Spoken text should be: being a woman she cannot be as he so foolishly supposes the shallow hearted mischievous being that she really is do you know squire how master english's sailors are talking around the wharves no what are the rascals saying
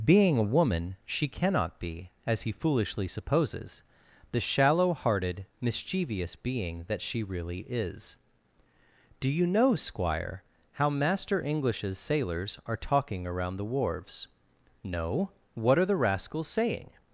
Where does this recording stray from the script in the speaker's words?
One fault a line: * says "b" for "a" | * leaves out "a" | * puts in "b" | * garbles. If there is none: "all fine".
* leaves out "so"